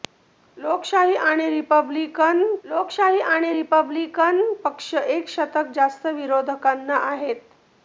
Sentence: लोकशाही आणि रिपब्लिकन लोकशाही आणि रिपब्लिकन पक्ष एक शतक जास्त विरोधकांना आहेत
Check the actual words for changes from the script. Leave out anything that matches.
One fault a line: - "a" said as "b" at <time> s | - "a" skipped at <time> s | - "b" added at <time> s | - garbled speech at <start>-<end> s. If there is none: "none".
none